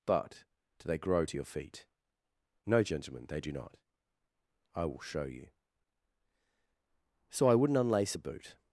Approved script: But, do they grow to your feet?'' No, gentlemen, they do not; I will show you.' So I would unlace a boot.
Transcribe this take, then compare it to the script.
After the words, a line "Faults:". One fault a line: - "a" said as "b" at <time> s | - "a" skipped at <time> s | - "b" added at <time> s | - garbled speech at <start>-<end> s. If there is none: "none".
But, do they grow to your feet?'' No, gentlemen, they do not; I will show you.' So I wouldn't unlace a boot.
Faults:
- "would" said as "wouldn't" at 7.5 s